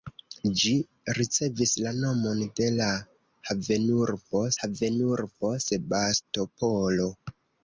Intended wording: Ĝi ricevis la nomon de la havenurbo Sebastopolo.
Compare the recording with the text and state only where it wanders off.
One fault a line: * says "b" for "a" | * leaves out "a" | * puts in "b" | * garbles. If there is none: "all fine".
* puts in "havenurbo"